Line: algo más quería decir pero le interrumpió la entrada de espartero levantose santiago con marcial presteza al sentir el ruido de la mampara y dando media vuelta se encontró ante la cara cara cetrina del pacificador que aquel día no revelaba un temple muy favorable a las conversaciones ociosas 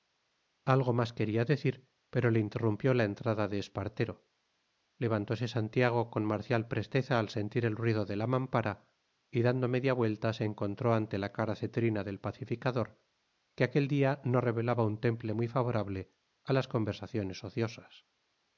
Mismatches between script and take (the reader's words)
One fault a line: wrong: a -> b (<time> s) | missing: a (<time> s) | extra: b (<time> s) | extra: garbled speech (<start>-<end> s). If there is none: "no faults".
missing: cara (11.5 s)